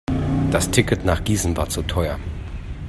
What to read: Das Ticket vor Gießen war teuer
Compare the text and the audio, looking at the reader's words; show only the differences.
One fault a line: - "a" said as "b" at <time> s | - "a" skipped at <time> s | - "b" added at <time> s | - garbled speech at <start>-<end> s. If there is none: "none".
- "vor" said as "nach" at 1.1 s
- "zu" added at 1.7 s